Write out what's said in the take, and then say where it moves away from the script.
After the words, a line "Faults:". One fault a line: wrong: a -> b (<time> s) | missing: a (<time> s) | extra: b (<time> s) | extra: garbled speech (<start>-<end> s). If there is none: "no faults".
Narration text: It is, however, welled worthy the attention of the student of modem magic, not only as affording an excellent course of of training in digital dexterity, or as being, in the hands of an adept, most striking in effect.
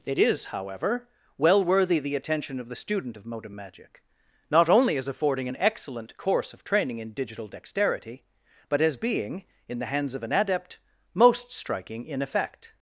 It is, however, well worthy the attention of the student of modem magic, not only as affording an excellent course of training in digital dexterity, but as being, in the hands of an adept, most striking in effect.
Faults:
wrong: welled -> well (1.4 s)
missing: of (6.6 s)
wrong: or -> but (8.7 s)